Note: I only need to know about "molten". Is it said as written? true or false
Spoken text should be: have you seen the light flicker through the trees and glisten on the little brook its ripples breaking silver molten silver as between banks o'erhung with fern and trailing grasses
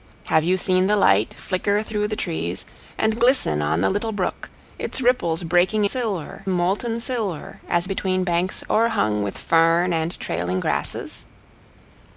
true